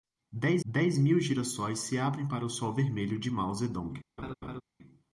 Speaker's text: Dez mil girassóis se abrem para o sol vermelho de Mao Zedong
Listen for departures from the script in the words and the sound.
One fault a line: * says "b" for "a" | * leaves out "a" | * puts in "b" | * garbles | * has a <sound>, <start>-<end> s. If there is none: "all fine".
* puts in "dez"
* has a laugh, 4.2-4.6 s